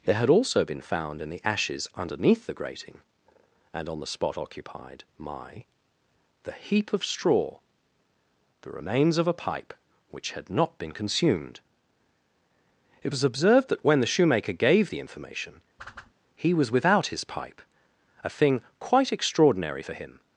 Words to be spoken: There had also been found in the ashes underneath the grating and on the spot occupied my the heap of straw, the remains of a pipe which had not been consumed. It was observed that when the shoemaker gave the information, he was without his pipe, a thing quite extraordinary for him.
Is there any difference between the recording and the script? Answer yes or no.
no